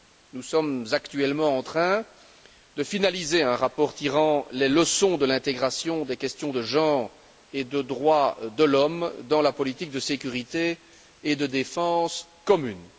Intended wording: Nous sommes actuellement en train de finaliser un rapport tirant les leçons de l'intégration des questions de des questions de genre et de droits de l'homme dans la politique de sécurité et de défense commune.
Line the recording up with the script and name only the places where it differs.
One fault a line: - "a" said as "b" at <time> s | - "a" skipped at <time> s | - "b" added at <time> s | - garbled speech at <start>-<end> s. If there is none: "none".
- "des questions de" skipped at 6.6 s